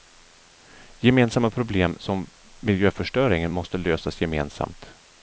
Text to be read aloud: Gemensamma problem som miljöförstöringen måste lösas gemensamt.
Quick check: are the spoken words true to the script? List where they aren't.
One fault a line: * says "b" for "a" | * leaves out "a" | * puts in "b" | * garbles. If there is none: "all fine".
all fine